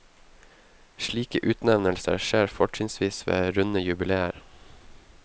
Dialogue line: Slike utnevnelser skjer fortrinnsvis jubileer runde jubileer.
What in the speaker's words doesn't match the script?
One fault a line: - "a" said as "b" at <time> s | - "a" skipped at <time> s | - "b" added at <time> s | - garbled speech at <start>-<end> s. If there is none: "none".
- "jubileer" said as "ved" at 3.3 s